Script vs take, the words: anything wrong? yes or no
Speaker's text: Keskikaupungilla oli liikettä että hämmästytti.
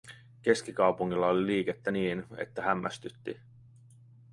yes